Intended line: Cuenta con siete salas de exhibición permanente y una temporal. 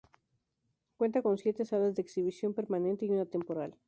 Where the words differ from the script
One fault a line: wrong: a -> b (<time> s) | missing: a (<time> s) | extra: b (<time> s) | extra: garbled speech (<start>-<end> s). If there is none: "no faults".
no faults